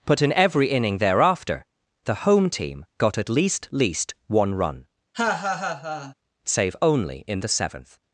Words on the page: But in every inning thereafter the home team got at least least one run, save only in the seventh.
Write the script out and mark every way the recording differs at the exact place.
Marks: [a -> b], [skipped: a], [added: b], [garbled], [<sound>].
But in every inning thereafter the home team got at least least one run, [laugh] save only in the seventh.